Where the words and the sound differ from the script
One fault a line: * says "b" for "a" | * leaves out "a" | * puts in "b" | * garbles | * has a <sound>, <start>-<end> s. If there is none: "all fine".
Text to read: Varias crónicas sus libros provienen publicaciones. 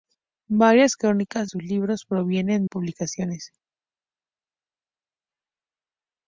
all fine